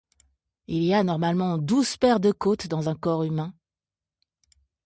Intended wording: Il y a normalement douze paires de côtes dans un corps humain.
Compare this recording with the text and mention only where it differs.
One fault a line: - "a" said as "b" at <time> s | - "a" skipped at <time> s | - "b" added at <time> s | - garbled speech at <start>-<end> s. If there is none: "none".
none